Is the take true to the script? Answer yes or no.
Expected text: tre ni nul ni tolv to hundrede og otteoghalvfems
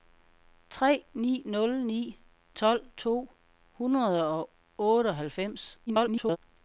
no